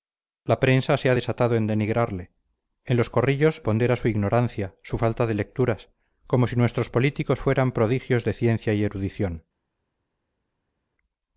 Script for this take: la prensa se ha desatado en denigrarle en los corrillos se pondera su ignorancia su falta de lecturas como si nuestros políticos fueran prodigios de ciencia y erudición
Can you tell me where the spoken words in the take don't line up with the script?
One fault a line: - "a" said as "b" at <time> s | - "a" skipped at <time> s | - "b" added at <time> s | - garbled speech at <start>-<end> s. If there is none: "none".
- "se" skipped at 3.6 s